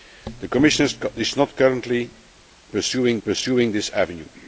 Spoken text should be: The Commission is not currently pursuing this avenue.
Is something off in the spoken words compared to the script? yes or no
yes